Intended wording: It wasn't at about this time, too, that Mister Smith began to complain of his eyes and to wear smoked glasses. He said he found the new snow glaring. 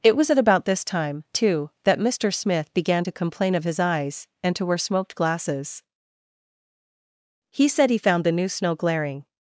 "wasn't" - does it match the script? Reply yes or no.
no